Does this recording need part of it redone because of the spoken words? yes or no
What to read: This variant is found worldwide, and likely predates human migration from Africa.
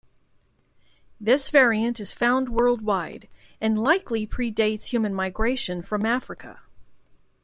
no